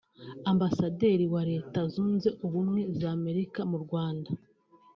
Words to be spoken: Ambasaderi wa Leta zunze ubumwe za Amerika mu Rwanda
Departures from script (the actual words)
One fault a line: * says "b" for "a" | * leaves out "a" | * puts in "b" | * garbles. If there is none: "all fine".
all fine